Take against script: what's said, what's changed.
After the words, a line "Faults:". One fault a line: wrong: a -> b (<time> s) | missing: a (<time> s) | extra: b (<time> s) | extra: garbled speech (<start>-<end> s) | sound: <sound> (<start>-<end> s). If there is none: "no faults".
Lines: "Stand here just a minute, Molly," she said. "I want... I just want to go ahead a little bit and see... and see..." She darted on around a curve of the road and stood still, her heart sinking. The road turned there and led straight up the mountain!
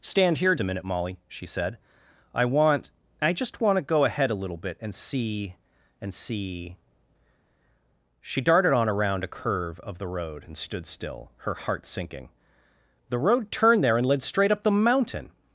"Stand here a minute, Molly," she said. "I want... I just want to go ahead a little bit and see... and see..." She darted on around a curve of the road and stood still, her heart sinking. The road turned there and led straight up the mountain!
Faults:
missing: just (0.6 s)